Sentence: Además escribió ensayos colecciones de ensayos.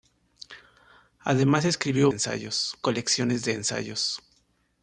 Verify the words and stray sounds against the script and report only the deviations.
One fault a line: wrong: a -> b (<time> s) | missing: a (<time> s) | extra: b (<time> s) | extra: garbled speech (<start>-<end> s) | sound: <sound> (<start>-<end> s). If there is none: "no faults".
no faults